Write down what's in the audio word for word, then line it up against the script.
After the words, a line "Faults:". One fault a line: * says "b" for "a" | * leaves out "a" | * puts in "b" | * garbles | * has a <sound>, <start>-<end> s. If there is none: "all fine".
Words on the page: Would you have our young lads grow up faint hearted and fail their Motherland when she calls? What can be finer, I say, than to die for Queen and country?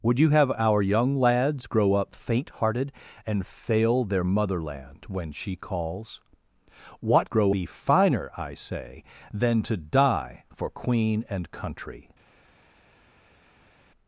Would you have our young lads grow up faint hearted and fail their Motherland when she calls? What grow be finer, I say, than to die for Queen and country?
Faults:
* says "grow" for "can"